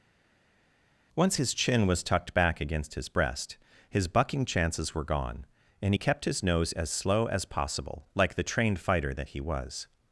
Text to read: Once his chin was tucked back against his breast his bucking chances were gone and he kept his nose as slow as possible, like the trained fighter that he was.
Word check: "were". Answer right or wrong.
right